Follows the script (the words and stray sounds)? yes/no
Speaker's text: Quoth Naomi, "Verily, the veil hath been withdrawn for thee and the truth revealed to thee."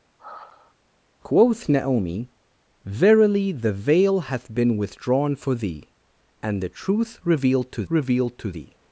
no